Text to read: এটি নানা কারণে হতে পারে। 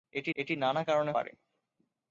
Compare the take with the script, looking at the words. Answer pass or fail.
fail